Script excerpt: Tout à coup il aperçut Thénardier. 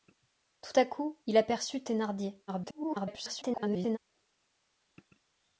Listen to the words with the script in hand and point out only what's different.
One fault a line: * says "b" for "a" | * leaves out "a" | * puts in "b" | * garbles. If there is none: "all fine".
* garbles